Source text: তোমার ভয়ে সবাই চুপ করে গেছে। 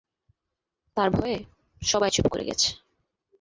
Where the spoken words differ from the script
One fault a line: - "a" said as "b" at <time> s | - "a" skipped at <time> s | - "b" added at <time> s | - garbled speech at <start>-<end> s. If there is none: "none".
- "তোমার" said as "তার" at 1.0 s